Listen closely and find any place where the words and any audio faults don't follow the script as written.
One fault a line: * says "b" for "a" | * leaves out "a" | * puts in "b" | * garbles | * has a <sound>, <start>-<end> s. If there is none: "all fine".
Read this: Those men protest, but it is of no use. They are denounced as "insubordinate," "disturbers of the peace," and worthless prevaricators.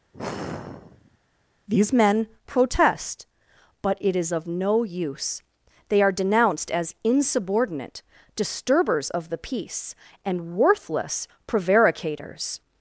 * has a sigh, 0.1-1.2 s
* says "These" for "Those"